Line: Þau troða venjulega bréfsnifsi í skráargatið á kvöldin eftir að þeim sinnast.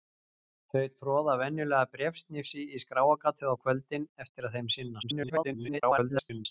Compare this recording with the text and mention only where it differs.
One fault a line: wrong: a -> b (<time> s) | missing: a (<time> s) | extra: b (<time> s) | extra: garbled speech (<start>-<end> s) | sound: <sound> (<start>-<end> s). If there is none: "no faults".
extra: garbled speech (5.0-6.5 s)